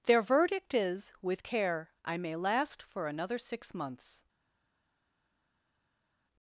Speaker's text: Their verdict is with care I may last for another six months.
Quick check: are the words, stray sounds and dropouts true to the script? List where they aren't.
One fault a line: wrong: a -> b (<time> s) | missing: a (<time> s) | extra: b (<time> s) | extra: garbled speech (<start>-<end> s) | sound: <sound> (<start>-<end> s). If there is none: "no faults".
no faults